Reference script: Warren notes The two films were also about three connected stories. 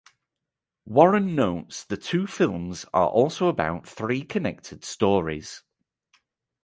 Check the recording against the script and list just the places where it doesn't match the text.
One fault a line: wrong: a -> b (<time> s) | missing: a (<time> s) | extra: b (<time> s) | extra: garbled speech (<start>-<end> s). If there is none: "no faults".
wrong: were -> are (2.9 s)